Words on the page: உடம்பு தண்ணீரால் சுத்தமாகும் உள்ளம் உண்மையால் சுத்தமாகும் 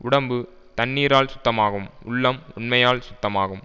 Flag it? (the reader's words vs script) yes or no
no